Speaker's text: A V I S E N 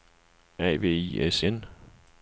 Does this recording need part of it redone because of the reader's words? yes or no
yes